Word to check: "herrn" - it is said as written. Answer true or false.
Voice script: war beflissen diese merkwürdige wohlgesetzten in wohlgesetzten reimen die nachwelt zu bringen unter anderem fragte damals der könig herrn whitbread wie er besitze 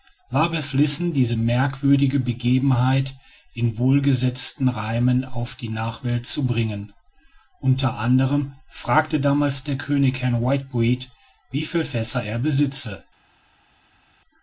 true